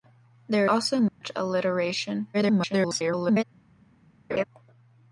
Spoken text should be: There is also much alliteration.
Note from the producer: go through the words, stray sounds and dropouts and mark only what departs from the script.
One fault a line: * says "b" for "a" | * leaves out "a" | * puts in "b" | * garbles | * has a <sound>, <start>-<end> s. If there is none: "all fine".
* leaves out "is"
* has a dropout, 1.1-1.2 s
* garbles
* has a laugh, 4.3-4.4 s